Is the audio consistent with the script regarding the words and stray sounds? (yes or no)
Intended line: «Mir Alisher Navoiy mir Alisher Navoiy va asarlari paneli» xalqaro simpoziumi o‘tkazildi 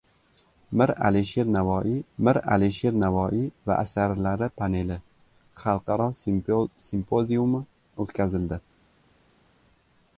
yes